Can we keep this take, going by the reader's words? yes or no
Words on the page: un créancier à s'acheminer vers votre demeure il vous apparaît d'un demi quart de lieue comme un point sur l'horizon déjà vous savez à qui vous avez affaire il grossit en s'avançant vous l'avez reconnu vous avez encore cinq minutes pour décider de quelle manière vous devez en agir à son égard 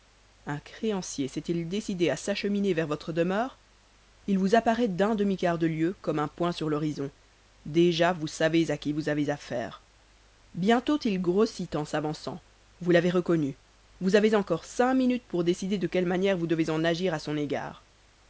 no